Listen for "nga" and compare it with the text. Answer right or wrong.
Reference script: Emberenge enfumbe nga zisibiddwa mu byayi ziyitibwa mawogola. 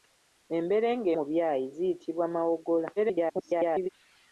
wrong